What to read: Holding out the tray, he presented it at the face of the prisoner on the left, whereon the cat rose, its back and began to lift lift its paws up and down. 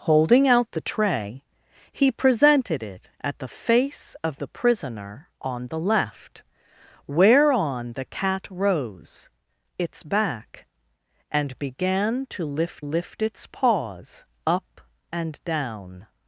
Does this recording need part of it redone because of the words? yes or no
no